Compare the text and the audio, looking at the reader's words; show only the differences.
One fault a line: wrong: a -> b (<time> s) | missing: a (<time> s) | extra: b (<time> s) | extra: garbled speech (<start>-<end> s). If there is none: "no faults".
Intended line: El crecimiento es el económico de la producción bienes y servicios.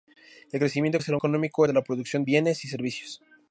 no faults